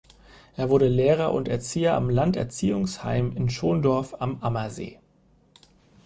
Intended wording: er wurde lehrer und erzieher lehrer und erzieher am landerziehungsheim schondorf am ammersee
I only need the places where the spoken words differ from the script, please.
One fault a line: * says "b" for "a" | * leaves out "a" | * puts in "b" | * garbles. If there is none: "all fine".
* leaves out "lehrer und erzieher"
* puts in "in"